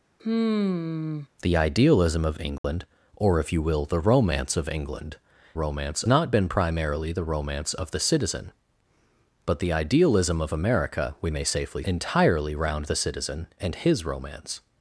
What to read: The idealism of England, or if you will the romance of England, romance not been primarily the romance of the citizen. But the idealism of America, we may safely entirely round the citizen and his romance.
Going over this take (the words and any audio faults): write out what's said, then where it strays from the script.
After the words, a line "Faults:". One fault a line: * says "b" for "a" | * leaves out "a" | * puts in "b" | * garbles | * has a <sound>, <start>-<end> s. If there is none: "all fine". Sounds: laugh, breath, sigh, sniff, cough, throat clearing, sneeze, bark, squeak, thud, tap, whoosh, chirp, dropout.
The idealism of England, or if you will the romance of England, romance not been primarily the romance of the citizen. But the idealism of America, we may safely entirely round the citizen and his romance.
Faults:
* has a sigh, 0.2-1.3 s
* has a dropout, 2.6-2.6 s